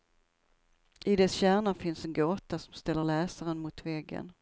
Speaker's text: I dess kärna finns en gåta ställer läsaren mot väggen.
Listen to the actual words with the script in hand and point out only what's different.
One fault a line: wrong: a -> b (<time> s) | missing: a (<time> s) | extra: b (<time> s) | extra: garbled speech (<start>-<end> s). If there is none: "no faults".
extra: som (2.6 s)